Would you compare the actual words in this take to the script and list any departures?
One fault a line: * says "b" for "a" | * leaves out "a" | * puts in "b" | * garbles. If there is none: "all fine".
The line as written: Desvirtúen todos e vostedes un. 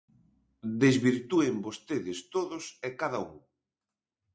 * puts in "vostedes"
* says "cada" for "vostedes"